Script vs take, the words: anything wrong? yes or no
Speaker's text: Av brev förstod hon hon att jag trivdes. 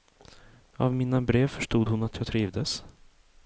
yes